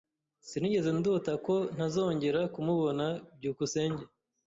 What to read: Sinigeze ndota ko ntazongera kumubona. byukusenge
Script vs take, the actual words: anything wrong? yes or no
no